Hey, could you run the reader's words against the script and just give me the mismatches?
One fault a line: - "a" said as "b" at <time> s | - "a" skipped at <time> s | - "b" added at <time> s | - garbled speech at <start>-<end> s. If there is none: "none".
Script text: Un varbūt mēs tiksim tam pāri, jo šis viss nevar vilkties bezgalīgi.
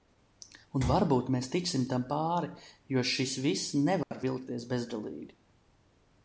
none